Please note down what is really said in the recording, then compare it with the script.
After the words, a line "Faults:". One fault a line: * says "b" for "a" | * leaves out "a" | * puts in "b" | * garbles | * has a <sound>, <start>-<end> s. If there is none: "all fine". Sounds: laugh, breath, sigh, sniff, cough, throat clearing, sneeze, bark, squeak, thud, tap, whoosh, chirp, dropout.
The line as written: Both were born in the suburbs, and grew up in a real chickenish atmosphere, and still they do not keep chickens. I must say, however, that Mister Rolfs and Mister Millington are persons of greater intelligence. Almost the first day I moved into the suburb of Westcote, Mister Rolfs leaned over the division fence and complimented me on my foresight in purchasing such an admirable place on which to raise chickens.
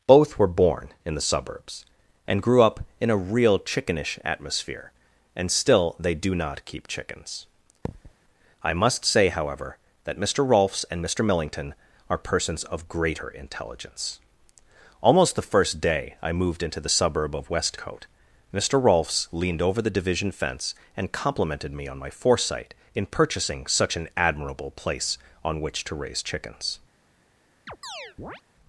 Both were born in the suburbs, and grew up in a real chickenish atmosphere, and still they do not keep chickens. I must say, however, that Mister Rolfs and Mister Millington are persons of greater intelligence. Almost the first day I moved into the suburb of Westcote, Mister Rolfs leaned over the division fence and complimented me on my foresight in purchasing such an admirable place on which to raise chickens.
Faults:
* has a thud, 7.8-8.1 s
* has a chirp, 27.7-28.4 s